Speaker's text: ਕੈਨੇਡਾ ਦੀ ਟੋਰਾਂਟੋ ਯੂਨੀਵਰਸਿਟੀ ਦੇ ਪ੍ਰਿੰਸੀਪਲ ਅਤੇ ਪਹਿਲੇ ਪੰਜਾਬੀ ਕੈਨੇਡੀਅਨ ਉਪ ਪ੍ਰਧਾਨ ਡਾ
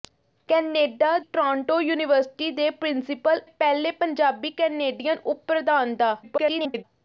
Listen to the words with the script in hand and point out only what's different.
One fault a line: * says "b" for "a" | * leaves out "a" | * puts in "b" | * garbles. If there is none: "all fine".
* leaves out "ਦੀ"
* leaves out "ਅਤੇ"
* garbles